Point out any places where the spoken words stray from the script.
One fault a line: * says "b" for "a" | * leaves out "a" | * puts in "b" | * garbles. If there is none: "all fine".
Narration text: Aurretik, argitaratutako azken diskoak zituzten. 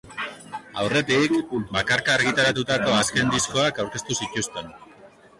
* puts in "bakarka"
* puts in "aurkeztu"